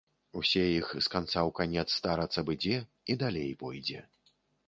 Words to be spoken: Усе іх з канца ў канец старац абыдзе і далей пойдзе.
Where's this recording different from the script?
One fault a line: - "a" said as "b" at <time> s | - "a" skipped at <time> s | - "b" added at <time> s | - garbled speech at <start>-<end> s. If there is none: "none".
none